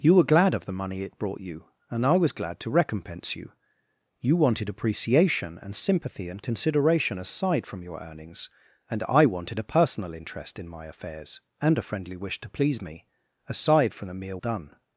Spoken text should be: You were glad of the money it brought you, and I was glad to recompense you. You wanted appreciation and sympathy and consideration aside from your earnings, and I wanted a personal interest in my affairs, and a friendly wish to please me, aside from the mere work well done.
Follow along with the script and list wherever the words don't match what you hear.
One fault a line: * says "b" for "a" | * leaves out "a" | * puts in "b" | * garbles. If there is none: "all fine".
* leaves out "work well"